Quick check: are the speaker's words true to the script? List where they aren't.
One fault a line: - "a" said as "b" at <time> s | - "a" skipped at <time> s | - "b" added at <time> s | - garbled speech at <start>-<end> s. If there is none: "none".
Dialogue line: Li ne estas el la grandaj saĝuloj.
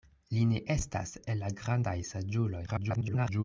- garbled speech at 2.7-3.4 s